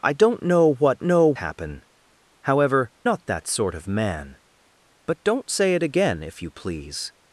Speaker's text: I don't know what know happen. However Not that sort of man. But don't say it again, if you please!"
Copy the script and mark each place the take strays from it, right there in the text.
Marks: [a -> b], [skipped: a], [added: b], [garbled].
I don't know what know happen. However Not that sort of man. But don't say it again, if you please!"